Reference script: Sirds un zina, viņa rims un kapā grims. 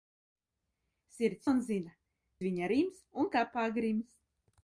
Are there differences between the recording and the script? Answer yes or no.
no